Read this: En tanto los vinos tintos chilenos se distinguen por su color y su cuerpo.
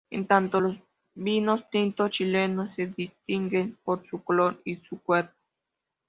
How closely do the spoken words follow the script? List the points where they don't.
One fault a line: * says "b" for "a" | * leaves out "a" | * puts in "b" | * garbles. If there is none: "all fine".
all fine